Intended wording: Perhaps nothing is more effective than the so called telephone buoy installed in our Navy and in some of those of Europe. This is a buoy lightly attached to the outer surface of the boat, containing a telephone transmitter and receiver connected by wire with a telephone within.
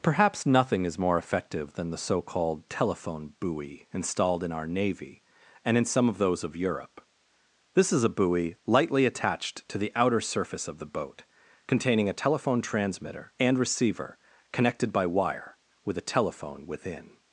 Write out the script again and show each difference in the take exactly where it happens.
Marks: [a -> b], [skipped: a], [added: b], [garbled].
Perhaps nothing is more effective than the so called telephone buoy installed in our Navy and in some of those of Europe. This is a buoy lightly attached to the outer surface of the boat, containing a telephone transmitter and receiver connected by wire with a telephone within.